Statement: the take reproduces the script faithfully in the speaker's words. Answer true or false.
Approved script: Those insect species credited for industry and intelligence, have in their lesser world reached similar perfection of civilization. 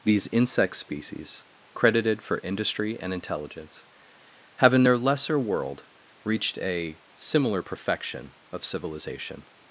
false